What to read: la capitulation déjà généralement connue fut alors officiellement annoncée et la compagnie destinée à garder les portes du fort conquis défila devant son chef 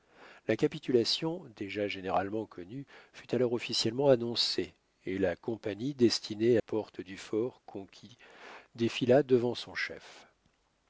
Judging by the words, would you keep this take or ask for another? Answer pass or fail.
fail